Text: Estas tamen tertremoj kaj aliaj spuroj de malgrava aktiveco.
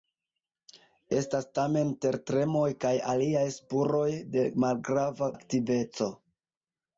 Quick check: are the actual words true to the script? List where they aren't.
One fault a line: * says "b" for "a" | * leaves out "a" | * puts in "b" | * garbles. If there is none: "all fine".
all fine